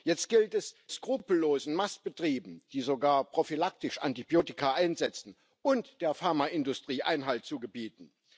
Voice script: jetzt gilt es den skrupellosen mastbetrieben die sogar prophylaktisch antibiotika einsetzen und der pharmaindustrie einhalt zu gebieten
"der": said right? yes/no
yes